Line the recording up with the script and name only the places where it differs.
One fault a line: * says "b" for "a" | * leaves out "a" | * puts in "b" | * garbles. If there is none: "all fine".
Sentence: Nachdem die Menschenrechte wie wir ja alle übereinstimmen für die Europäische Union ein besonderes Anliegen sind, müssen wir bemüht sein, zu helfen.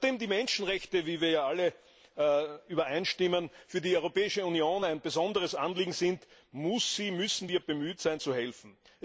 all fine